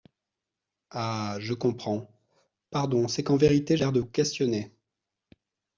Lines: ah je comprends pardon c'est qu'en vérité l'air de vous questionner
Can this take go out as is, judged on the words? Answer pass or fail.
pass